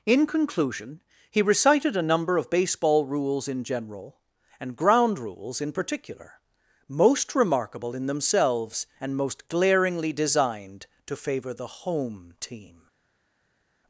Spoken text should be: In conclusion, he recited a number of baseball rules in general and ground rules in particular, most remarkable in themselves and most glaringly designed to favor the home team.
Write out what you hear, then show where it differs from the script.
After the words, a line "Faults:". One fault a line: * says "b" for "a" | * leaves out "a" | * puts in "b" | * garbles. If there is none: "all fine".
In conclusion, he recited a number of baseball rules in general and ground rules in particular, most remarkable in themselves and most glaringly designed to favor the home team.
Faults:
all fine